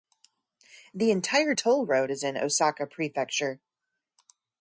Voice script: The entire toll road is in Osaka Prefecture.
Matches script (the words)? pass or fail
pass